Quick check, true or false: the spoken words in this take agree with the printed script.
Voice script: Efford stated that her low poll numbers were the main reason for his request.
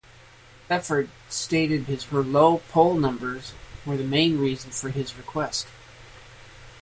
false